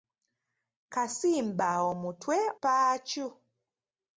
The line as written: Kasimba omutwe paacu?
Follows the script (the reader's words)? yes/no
yes